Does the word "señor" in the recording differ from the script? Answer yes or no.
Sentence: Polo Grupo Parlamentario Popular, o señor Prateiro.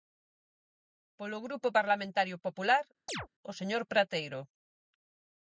no